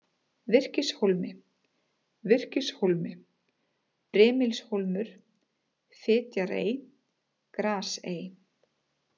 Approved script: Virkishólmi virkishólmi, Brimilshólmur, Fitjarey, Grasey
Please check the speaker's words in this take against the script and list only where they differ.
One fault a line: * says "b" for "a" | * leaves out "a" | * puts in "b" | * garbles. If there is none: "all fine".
all fine